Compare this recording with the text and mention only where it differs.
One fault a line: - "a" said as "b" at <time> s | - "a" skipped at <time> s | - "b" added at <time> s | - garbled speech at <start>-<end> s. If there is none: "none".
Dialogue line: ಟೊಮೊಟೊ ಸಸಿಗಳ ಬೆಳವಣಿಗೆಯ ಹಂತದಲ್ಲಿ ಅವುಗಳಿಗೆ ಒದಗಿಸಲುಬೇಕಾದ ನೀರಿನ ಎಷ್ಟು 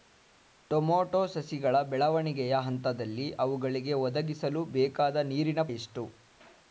none